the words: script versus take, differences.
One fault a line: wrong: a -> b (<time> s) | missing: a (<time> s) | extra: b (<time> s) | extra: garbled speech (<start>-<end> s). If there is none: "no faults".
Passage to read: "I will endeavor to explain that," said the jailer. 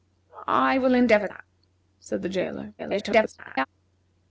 missing: to explain (1.3 s)
extra: garbled speech (2.8-3.7 s)